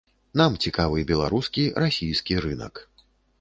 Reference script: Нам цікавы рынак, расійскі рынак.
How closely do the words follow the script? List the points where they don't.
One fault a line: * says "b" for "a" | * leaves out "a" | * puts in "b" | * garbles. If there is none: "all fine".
* says "беларускі" for "рынак"